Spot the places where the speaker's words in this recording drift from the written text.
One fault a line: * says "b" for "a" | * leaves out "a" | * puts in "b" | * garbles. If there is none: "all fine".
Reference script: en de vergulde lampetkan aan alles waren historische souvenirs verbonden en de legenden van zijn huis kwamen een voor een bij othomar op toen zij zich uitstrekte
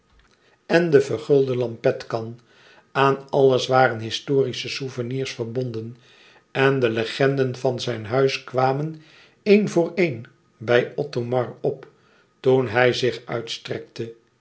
* says "hij" for "zij"